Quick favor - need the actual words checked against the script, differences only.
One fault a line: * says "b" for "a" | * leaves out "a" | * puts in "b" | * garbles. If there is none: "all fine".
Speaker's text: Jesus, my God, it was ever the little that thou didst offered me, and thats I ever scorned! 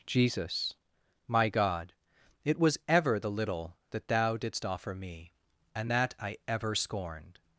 * says "offer" for "offered"
* says "that" for "thats"